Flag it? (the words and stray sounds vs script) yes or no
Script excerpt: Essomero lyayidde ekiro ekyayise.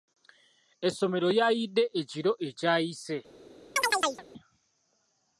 yes